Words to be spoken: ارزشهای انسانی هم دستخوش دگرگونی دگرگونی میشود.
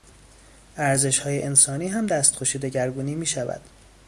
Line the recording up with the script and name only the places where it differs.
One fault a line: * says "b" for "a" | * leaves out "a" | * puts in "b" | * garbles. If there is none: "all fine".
* leaves out "دگرگونی"